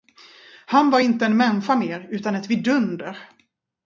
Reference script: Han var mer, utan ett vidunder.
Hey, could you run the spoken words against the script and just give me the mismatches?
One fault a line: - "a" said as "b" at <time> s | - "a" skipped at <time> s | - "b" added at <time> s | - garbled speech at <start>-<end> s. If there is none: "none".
- "inte en människa" added at 1.0 s